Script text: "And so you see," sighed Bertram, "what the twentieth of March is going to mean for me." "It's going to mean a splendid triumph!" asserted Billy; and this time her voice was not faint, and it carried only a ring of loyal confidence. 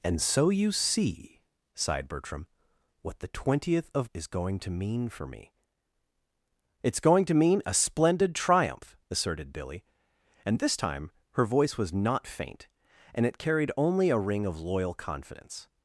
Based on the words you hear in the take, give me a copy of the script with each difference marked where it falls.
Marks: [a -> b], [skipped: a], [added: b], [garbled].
"And so you see," sighed Bertram, "what the twentieth of [skipped: March] is going to mean for me." "It's going to mean a splendid triumph!" asserted Billy; and this time her voice was not faint, and it carried only a ring of loyal confidence.